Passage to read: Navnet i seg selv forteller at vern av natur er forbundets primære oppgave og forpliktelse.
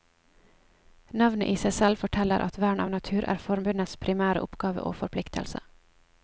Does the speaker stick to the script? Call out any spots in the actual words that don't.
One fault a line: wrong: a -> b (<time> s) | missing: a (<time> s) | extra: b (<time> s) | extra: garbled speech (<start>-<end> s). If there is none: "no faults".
no faults